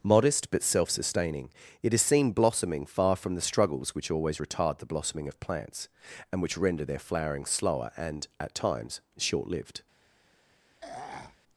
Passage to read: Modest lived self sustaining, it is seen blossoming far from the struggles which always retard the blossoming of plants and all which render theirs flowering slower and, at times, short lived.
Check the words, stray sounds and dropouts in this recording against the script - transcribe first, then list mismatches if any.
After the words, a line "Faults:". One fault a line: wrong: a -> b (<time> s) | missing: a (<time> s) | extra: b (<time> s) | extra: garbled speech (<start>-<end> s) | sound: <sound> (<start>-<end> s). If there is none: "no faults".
Modest but self sustaining, it is seen blossoming far from the struggles which always retard the blossoming of plants and which render their flowering slower and, at times, short lived.
Faults:
wrong: lived -> but (0.5 s)
missing: all (6.4 s)
wrong: theirs -> their (6.9 s)
sound: throat clearing (10.8-11.4 s)